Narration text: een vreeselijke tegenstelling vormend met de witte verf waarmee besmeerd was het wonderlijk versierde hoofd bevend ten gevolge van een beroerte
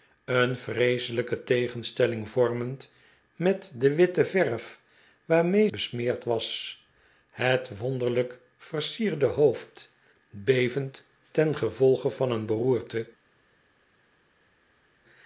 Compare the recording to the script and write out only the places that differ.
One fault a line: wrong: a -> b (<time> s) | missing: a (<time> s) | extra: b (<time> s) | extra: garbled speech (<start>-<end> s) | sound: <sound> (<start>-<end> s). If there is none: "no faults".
no faults